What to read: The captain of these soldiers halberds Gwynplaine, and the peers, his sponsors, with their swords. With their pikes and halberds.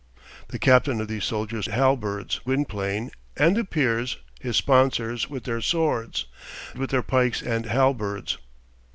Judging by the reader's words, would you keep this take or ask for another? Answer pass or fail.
pass